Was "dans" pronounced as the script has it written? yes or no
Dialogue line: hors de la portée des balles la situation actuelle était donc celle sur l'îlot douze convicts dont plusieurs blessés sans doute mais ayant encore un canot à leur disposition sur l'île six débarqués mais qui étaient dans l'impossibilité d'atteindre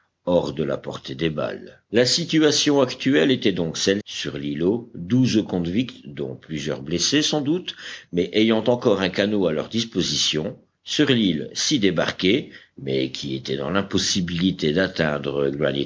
yes